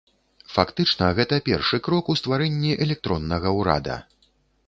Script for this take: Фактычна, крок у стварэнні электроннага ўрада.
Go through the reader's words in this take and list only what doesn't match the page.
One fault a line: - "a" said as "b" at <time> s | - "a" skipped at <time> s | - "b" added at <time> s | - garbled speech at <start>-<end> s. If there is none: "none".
- "гэта першы" added at 1.2 s